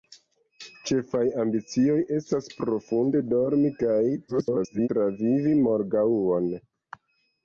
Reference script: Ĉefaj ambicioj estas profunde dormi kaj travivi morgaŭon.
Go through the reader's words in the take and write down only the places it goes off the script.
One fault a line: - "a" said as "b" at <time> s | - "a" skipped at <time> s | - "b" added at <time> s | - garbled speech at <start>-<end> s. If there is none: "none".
- garbled speech at 4.3-4.9 s